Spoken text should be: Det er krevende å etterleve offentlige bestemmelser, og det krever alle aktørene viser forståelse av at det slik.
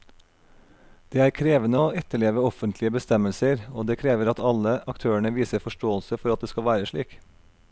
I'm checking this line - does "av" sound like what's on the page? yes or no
no